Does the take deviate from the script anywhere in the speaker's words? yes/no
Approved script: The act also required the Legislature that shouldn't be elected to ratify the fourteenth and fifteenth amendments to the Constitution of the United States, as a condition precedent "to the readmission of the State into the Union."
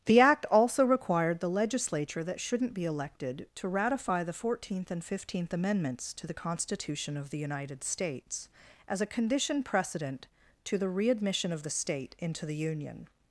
no